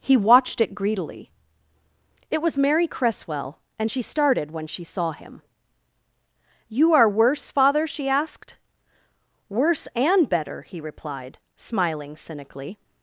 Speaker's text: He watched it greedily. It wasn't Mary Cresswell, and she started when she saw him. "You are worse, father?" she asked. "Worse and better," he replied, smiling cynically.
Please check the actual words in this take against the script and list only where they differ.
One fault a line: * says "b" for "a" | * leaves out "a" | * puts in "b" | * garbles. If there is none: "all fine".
* says "was" for "wasn't"